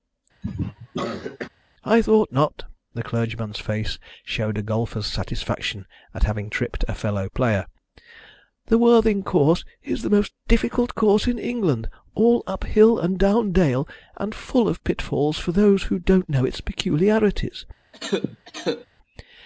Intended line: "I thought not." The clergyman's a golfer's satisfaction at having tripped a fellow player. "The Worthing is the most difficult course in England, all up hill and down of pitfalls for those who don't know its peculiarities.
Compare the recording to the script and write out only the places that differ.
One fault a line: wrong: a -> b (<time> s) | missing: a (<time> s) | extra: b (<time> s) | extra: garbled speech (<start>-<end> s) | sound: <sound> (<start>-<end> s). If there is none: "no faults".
sound: cough (0.4-1.5 s)
extra: face showed (3.6 s)
extra: course (9.2 s)
extra: dale and full (13.5 s)
sound: cough (17.9-18.9 s)